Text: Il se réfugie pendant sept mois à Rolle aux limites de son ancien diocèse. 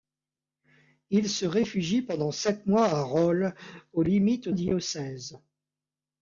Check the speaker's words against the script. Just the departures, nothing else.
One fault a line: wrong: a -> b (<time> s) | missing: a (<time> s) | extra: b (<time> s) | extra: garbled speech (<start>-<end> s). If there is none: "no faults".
missing: de son ancien (4.5 s)